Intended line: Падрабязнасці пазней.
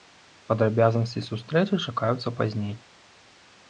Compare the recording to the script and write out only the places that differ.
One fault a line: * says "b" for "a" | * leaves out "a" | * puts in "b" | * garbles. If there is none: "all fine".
* puts in "сустрэчы чакаюцца"